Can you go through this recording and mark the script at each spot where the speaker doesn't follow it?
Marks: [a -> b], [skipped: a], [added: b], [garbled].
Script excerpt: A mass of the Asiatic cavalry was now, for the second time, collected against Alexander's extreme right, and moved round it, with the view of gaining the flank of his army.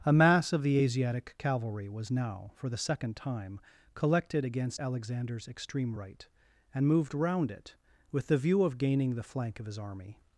A mass of the Asiatic cavalry was now, for the second time, collected against Alexander's extreme right, and moved round it, with the view of gaining the flank of his army.